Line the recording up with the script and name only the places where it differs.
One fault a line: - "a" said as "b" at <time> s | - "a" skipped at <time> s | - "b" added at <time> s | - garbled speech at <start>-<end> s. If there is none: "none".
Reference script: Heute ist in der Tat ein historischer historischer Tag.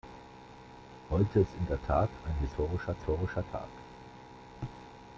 none